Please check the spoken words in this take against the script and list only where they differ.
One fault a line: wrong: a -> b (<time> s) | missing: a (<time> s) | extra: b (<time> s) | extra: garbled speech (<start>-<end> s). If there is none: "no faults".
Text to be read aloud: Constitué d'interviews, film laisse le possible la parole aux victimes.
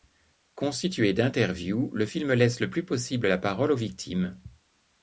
extra: le (1.9 s)
extra: plus (2.7 s)